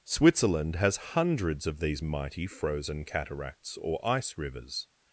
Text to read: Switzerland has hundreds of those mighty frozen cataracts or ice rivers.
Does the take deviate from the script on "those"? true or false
true